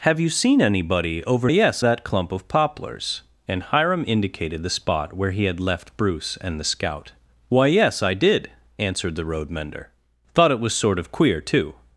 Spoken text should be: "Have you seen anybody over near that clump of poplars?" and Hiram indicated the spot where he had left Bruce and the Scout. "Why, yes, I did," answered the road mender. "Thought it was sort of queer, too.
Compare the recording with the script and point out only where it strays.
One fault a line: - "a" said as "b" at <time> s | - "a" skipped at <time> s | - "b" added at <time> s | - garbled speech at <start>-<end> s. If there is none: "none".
- "near" said as "yes" at 1.5 s